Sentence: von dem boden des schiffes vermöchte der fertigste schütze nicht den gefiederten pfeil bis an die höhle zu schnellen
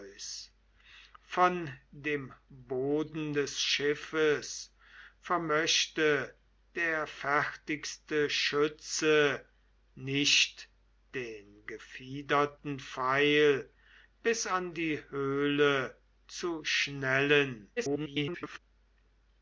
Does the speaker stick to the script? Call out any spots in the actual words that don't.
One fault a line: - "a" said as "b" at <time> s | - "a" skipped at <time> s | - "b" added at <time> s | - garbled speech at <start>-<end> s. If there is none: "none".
- garbled speech at 17.8-18.6 s